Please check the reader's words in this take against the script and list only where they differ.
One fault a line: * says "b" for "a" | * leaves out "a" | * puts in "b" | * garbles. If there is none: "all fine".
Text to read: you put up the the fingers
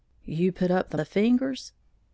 all fine